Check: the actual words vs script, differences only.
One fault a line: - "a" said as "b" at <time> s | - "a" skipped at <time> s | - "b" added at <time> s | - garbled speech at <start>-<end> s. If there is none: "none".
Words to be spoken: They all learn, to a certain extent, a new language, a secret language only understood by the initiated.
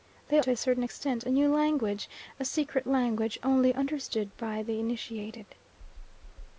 - "all learn" skipped at 0.4 s